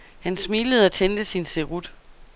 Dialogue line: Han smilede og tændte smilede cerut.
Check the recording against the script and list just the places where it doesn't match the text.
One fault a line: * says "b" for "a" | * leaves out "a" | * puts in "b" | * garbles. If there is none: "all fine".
* says "sin" for "smilede"